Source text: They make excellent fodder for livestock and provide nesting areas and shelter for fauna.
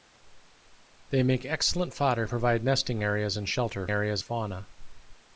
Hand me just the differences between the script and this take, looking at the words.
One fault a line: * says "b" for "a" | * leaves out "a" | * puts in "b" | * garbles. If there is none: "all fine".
* leaves out "for livestock and"
* says "areas" for "for"